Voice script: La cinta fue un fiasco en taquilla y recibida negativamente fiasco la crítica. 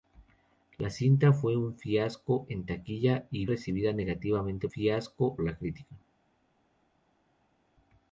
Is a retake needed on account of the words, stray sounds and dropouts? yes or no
no